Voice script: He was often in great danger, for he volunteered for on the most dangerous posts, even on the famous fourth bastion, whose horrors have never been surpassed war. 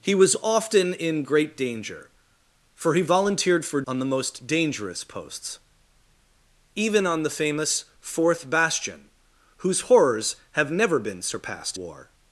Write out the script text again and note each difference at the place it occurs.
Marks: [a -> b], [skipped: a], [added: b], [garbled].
He was often in great danger, for he volunteered for on the most dangerous posts, even on the famous fourth bastion, whose horrors have never been surpassed war.